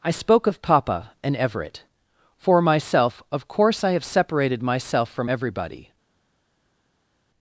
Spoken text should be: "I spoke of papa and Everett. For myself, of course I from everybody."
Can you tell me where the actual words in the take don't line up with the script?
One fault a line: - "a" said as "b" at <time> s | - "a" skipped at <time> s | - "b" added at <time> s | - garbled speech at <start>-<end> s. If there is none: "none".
- "have separated myself" added at 3.9 s